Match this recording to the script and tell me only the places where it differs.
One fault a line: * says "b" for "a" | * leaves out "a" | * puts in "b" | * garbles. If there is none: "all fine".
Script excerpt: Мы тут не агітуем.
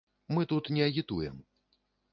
all fine